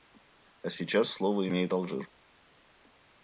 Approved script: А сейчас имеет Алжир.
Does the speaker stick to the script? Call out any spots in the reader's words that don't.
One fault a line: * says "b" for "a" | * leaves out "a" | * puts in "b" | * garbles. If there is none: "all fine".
* puts in "слово"